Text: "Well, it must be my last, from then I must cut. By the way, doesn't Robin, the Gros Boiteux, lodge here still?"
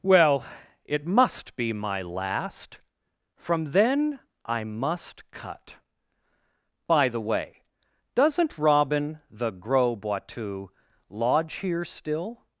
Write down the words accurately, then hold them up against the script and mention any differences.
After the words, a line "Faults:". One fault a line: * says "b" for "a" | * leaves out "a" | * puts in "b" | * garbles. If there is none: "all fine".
"Well, it must be my last, from then I must cut. By the way, doesn't Robin, the Gros Boiteux, lodge here still?"
Faults:
all fine